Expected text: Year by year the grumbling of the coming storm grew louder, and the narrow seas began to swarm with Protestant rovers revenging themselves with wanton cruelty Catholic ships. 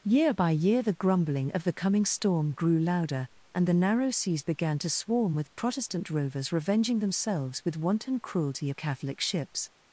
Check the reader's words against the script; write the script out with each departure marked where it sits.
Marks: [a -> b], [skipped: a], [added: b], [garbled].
Year by year the grumbling of the coming storm grew louder, and the narrow seas began to swarm with Protestant rovers revenging themselves with wanton cruelty Catholic ships.